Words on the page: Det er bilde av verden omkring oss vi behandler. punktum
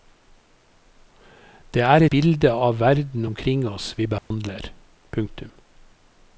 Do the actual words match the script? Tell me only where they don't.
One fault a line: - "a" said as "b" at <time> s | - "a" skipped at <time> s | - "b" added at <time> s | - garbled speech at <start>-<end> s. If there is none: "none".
none